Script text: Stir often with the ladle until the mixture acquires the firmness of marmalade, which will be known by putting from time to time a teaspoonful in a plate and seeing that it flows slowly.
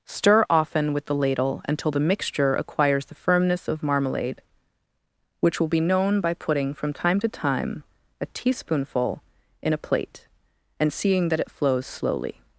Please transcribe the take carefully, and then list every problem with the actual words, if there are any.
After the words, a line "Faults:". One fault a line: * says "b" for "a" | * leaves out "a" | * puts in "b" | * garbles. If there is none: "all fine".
Stir often with the ladle until the mixture acquires the firmness of marmalade, which will be known by putting from time to time a teaspoonful in a plate and seeing that it flows slowly.
Faults:
all fine